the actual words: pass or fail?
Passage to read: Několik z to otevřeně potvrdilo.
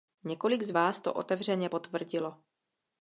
fail